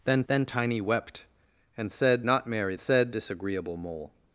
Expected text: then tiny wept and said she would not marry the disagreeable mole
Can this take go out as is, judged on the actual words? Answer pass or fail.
fail